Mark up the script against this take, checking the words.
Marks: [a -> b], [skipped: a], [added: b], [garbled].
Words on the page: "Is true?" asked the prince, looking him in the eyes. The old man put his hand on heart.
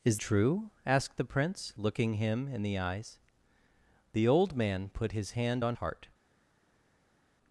"Is true?" asked the prince, looking him in the eyes. The old man put his hand on heart.